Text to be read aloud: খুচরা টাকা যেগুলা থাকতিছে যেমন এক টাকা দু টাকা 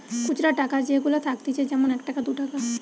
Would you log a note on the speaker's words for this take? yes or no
no